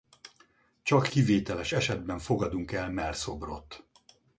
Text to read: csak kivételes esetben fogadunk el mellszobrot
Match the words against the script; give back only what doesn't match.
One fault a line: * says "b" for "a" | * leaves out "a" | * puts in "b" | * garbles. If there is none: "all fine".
all fine